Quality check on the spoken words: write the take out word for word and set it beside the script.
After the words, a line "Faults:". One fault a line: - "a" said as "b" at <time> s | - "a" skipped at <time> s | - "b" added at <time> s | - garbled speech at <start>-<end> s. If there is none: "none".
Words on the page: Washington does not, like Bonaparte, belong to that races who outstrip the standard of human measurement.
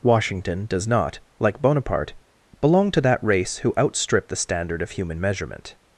Washington does not, like Bonaparte, belong to that race who outstrip the standard of human measurement.
Faults:
- "races" said as "race" at 3.2 s